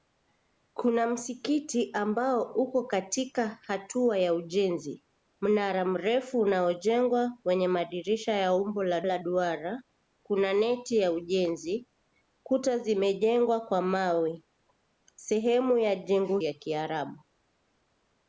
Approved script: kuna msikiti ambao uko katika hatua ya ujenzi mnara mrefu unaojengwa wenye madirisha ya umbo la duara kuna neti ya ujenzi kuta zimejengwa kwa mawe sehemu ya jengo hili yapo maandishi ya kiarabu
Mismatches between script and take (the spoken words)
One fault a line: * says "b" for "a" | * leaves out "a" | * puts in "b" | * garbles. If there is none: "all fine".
* puts in "la"
* leaves out "hili yapo maandishi"